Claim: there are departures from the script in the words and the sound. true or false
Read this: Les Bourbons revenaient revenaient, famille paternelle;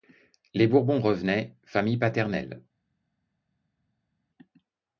true